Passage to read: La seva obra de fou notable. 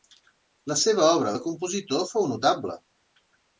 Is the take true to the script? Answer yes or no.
no